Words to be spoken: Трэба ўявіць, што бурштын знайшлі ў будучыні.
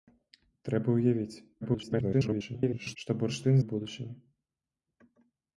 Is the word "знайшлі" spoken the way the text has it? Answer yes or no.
no